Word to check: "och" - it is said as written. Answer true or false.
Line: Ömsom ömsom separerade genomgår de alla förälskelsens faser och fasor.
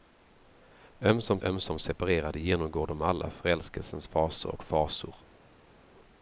true